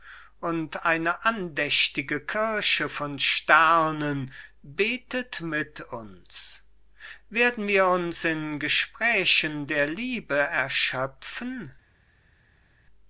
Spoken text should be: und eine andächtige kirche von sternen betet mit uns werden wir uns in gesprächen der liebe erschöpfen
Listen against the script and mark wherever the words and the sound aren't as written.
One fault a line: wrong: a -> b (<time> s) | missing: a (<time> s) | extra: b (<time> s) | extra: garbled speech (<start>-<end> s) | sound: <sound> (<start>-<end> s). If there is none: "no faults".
no faults